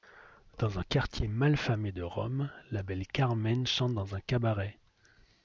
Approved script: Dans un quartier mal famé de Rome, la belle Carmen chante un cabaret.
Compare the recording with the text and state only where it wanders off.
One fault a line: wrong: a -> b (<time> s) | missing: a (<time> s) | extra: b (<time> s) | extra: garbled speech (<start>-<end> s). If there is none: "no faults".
extra: dans (4.0 s)